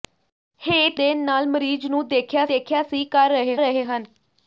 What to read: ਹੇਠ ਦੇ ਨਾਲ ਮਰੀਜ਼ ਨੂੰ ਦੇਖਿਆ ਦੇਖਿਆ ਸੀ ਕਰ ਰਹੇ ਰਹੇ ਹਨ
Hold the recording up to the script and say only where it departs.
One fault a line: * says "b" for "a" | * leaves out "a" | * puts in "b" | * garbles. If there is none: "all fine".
all fine